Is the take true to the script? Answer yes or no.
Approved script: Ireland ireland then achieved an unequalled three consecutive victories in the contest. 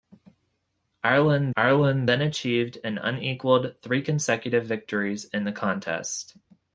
yes